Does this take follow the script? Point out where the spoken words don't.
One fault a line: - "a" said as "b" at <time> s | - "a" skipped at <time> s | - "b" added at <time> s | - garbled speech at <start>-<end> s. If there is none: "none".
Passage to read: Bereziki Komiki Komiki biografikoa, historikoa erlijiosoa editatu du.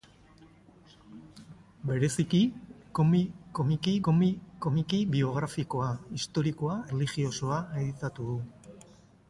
none